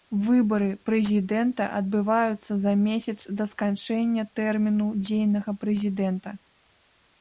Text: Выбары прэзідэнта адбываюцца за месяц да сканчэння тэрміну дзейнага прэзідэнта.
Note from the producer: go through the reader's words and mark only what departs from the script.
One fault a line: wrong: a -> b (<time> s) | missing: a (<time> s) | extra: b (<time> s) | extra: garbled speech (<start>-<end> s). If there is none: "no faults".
no faults